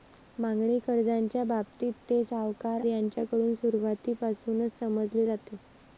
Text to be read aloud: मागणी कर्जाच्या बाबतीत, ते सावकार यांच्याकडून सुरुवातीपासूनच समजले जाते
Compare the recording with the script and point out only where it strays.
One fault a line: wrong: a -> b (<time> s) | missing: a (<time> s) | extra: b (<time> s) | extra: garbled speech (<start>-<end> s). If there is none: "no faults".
no faults